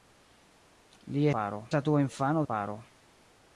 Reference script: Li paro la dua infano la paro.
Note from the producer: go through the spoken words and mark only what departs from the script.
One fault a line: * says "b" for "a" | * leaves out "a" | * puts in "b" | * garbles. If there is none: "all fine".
all fine